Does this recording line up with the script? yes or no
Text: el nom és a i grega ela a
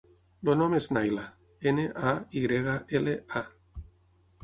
no